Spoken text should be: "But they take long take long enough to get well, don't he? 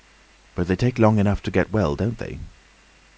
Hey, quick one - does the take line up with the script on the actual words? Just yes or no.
no